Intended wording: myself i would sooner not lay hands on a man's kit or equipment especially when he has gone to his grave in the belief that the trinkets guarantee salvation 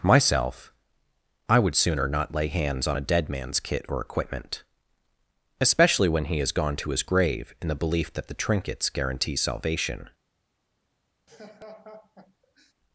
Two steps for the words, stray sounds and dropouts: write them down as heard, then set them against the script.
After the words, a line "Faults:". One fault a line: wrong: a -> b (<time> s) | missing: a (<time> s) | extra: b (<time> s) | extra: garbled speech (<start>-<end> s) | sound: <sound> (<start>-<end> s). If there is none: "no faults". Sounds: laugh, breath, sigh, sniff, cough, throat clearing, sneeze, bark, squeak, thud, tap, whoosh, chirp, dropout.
myself i would sooner not lay hands on a dead man's kit or equipment especially when he has gone to his grave in the belief that the trinkets guarantee salvation
Faults:
extra: dead (3.0 s)
sound: laugh (11.3-12.7 s)